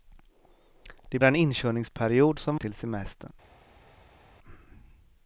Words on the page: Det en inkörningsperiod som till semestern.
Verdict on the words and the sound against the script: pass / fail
pass